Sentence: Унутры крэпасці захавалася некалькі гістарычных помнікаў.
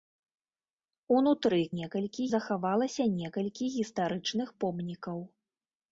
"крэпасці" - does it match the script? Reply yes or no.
no